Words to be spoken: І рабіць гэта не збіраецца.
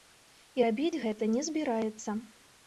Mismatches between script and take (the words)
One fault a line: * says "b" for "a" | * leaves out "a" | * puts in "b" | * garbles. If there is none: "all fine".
all fine